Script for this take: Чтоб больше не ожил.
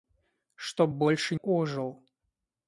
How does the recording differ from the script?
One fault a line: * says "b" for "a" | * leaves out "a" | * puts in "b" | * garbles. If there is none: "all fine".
* leaves out "не"